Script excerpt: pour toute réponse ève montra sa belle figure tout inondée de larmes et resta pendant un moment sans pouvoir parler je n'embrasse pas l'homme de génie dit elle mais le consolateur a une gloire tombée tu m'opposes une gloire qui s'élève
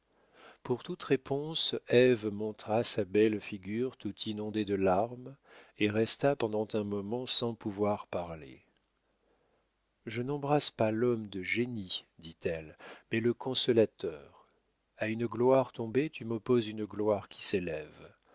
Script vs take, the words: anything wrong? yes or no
no